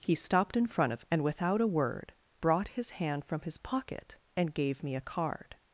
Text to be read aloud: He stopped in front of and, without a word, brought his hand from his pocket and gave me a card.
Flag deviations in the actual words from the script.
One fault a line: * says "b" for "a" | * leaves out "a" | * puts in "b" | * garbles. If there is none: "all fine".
all fine